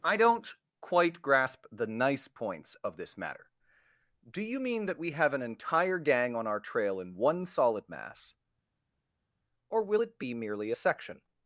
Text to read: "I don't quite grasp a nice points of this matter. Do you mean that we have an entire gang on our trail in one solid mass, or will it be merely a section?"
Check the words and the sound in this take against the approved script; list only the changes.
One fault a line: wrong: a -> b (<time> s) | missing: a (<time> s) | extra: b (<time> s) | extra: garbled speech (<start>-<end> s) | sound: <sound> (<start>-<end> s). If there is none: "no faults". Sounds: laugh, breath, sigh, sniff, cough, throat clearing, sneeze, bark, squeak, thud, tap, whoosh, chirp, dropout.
wrong: a -> the (1.7 s)